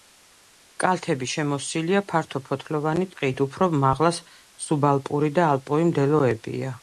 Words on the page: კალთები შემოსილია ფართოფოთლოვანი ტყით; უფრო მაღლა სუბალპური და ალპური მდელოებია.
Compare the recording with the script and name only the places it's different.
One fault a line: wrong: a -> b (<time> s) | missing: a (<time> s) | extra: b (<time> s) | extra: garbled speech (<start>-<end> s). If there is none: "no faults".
no faults